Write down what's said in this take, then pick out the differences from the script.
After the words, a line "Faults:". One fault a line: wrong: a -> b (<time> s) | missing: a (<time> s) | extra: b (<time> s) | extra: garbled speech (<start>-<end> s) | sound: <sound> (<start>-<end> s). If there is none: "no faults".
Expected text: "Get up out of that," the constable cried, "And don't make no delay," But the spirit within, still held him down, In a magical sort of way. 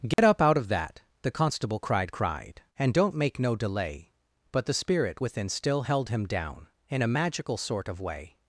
"Get up out of that," the constable cried cried, "And don't make no delay," But the spirit within, still held him down, In a magical sort of way.
Faults:
sound: dropout (0.1-0.2 s)
extra: cried (2.1 s)